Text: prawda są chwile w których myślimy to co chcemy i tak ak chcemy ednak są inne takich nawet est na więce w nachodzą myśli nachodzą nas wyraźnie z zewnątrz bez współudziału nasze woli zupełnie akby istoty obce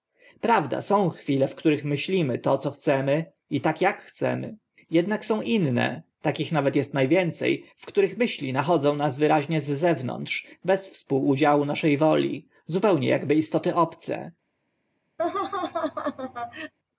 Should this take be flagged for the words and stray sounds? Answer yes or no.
yes